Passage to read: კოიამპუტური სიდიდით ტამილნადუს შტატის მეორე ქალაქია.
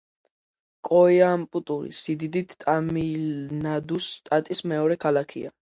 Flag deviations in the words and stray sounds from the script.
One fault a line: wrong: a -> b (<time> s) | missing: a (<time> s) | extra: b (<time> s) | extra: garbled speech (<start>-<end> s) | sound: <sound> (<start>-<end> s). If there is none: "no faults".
no faults